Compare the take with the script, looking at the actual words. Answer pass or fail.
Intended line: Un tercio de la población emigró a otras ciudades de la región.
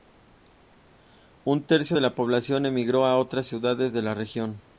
pass